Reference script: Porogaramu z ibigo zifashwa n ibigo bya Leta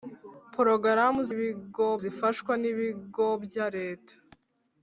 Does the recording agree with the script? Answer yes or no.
yes